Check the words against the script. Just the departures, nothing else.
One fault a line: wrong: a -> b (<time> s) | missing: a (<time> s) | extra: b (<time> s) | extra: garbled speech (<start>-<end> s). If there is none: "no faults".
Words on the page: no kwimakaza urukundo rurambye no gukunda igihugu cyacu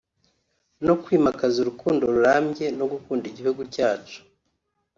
no faults